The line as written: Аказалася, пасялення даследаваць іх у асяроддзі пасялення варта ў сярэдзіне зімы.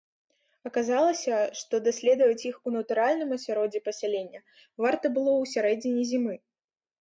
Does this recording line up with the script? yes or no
no